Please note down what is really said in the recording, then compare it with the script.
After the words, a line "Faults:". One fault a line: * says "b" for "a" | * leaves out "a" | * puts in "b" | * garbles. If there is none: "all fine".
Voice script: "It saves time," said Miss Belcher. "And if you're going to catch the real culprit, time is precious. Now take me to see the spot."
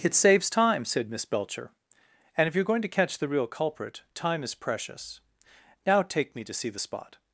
"It saves time," said Miss Belcher. "And if you're going to catch the real culprit, time is precious. Now take me to see the spot."
Faults:
all fine